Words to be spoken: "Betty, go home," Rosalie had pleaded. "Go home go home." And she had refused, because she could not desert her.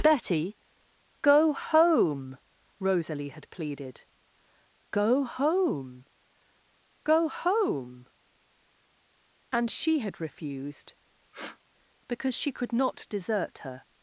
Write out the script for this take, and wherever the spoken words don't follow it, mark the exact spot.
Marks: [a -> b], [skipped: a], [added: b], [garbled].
"Betty, go home," Rosalie had pleaded. "Go home go home." And she had refused, because she could not desert her.